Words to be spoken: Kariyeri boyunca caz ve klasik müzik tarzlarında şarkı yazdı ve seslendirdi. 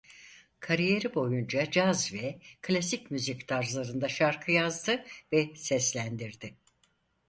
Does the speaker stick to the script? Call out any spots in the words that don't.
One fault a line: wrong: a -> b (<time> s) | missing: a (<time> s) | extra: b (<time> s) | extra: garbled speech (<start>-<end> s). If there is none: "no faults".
no faults